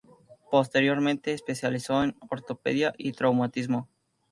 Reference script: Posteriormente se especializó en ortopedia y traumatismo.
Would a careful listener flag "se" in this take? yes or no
yes